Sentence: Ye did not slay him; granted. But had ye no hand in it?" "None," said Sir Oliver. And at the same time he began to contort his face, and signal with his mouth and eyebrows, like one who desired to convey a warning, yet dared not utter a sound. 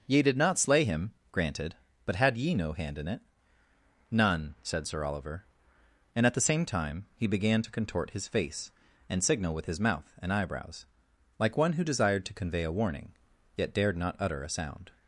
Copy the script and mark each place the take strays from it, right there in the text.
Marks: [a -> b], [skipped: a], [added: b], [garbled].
Ye did not slay him; granted. But had ye no hand in it?" "None," said Sir Oliver. And at the same time he began to contort his face, and signal with his mouth and eyebrows, like one who desired to convey a warning, yet dared not utter a sound.